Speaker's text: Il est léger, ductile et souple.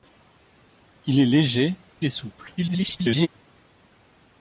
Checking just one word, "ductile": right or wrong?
wrong